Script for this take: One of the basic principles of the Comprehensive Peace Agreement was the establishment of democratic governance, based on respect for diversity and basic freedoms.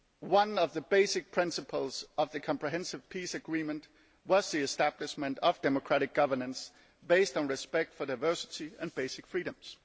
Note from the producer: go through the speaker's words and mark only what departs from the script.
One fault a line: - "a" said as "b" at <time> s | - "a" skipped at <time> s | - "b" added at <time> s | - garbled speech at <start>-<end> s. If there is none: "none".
none